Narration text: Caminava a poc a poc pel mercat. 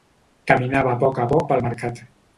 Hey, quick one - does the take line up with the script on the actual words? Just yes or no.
yes